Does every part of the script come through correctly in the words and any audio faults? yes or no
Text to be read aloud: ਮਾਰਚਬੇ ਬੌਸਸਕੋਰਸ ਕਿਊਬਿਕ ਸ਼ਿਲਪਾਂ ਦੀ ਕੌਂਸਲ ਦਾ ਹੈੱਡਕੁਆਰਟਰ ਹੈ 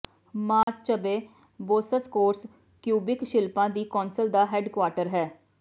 no